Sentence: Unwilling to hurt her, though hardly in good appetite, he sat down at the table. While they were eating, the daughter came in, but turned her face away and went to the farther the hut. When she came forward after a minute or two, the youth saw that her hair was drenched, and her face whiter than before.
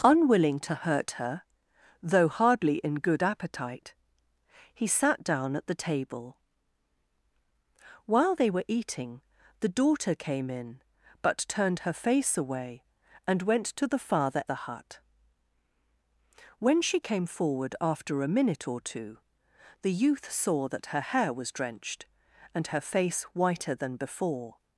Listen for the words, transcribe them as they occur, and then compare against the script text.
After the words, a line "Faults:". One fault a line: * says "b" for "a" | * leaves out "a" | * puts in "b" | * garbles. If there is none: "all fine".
Unwilling to hurt her, though hardly in good appetite, he sat down at the table. While they were eating, the daughter came in, but turned her face away and went to the farther the hut. When she came forward after a minute or two, the youth saw that her hair was drenched, and her face whiter than before.
Faults:
all fine